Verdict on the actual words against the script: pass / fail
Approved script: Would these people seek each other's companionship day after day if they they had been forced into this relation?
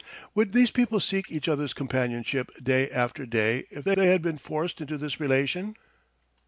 pass